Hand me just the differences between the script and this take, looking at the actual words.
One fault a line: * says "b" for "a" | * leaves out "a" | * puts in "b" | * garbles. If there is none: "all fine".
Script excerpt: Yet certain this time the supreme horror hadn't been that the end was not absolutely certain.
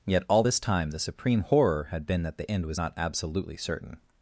* says "all" for "certain"
* says "had" for "hadn't"